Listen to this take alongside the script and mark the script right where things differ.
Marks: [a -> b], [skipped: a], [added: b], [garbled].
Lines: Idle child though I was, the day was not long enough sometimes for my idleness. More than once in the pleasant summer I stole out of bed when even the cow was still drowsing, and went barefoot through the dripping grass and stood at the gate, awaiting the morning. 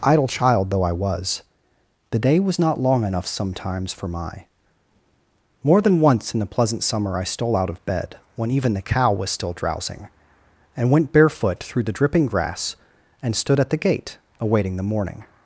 Idle child though I was, the day was not long enough sometimes for my [skipped: idleness.] More than once in the pleasant summer I stole out of bed when even the cow was still drowsing, and went barefoot through the dripping grass and stood at the gate, awaiting the morning.